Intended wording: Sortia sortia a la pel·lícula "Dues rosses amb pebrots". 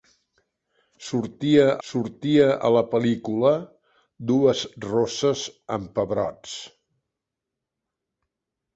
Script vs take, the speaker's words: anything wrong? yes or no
no